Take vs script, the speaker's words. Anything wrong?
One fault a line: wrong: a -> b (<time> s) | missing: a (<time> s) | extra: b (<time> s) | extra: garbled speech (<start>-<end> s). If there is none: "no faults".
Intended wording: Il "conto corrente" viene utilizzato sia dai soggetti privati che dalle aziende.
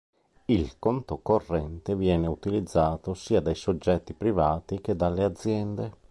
no faults